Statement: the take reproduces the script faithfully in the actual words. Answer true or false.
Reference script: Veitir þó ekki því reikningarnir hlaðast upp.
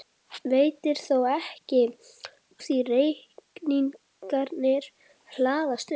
true